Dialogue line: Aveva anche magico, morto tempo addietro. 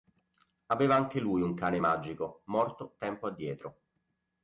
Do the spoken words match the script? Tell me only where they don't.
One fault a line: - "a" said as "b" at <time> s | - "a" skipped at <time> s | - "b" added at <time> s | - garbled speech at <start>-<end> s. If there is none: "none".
- "lui un cane" added at 1.2 s